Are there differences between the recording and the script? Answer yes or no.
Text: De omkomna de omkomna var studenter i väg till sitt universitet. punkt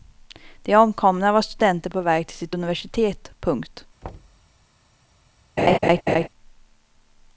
yes